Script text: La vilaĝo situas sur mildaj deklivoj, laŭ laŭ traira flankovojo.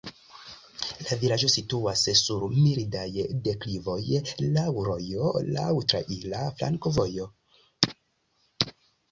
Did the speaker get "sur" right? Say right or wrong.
right